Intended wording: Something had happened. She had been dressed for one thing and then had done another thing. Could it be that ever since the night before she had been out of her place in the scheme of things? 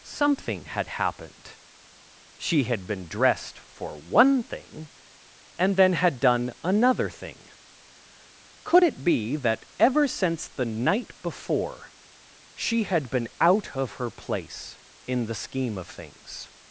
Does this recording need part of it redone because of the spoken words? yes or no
no